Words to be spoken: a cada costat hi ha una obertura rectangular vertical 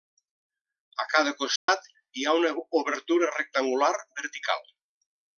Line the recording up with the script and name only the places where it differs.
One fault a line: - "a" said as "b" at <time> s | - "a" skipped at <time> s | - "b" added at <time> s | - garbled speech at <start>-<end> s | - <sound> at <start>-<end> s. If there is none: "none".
- dropout at 1.6-1.7 s